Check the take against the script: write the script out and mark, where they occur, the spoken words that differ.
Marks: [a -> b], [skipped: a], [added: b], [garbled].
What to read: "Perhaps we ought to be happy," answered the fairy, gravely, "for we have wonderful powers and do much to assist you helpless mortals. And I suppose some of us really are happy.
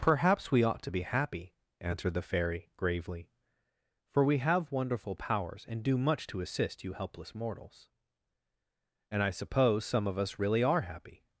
"Perhaps we ought to be happy," answered the fairy, gravely, "for we have wonderful powers and do much to assist you helpless mortals. And I suppose some of us really are happy.